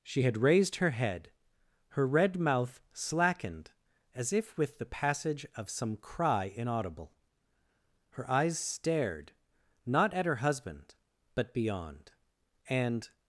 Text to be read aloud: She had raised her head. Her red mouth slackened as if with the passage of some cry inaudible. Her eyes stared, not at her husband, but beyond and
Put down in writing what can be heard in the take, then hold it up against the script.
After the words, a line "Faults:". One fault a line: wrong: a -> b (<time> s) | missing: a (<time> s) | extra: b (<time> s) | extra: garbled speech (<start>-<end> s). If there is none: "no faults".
She had raised her head. Her red mouth slackened as if with the passage of some cry inaudible. Her eyes stared, not at her husband, but beyond and
Faults:
no faults